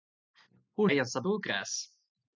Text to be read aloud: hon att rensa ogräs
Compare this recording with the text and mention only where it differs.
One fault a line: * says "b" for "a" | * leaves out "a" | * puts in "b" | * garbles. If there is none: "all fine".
all fine